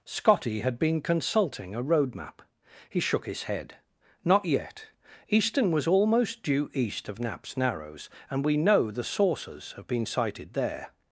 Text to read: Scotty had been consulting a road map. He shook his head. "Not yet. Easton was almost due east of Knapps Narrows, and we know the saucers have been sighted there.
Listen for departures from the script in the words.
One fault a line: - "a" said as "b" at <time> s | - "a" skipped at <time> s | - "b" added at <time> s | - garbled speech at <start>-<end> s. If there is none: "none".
none